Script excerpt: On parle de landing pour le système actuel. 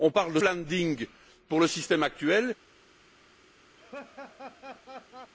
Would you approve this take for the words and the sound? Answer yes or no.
no